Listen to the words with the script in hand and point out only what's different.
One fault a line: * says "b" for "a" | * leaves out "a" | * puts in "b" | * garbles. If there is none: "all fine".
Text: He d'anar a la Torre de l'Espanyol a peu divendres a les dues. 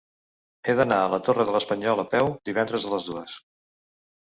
all fine